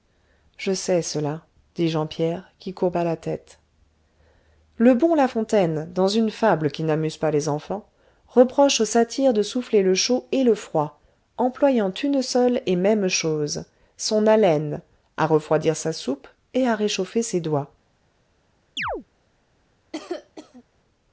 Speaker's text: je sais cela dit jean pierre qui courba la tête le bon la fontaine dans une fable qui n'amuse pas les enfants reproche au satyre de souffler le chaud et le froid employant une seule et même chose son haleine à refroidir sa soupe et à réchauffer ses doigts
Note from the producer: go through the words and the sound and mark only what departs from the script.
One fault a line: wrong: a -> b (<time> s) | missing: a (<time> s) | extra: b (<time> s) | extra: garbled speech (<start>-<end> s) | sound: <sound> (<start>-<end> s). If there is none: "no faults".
sound: chirp (18.8-19.0 s)
sound: cough (19.9-20.6 s)